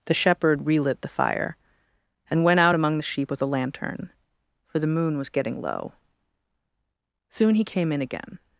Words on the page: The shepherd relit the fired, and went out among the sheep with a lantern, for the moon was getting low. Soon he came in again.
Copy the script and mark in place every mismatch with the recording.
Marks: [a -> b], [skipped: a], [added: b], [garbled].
The shepherd relit the [fired, -> fire] and went out among the sheep with a lantern, for the moon was getting low. Soon he came in again.